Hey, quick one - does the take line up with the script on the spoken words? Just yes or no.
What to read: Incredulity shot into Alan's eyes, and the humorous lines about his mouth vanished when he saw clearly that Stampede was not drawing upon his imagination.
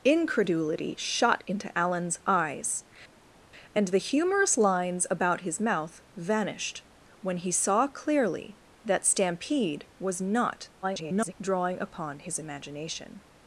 no